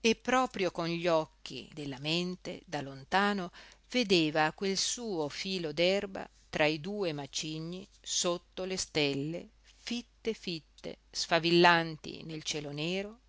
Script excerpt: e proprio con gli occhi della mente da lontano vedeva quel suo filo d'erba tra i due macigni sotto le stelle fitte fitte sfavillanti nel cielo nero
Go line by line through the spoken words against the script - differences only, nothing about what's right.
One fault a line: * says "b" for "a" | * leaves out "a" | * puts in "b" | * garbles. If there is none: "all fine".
all fine